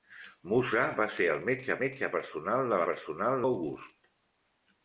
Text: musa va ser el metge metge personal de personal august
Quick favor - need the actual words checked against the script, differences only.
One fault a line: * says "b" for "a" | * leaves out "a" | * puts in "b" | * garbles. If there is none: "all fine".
all fine